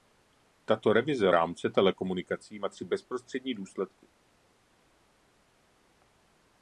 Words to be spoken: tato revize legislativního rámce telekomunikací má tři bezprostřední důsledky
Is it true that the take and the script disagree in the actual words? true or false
true